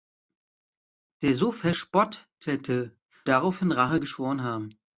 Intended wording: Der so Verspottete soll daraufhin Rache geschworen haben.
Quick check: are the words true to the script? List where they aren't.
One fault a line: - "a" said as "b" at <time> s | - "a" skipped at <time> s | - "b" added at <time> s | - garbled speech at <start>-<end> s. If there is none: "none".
- "soll" skipped at 3.0 s